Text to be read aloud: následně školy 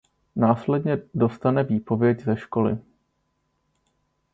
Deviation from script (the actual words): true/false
true